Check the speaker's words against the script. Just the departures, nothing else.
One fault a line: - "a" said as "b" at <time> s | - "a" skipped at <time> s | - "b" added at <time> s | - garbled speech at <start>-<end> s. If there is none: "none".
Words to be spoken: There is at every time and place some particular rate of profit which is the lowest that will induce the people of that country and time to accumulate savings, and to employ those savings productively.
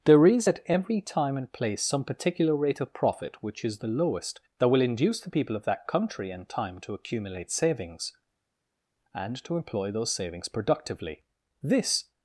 - "This" added at 11.6 s